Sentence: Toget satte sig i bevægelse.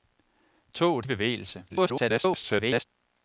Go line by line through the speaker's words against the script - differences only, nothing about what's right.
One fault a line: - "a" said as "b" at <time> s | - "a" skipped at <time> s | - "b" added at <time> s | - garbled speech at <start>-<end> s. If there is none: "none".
- "satte sig" skipped at 1.1 s
- garbled speech at 1.7-2.8 s